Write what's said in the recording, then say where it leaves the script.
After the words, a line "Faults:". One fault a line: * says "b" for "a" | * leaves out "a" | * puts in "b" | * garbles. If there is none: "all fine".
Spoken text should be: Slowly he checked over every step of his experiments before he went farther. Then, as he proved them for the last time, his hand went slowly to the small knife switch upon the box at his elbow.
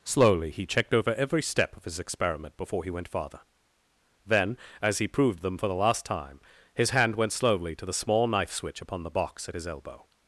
Slowly he checked over every step of his experiment before he went farther. Then, as he proved them for the last time, his hand went slowly to the small knife switch upon the box at his elbow.
Faults:
* says "experiment" for "experiments"